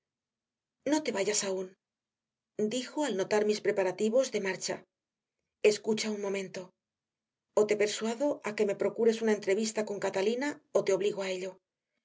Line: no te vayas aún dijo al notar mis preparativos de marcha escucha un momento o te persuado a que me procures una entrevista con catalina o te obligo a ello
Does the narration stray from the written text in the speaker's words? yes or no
no